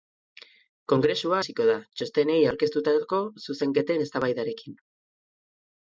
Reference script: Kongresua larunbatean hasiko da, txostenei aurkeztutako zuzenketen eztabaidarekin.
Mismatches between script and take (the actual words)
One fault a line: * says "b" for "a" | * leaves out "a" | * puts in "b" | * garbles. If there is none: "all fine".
* leaves out "larunbatean"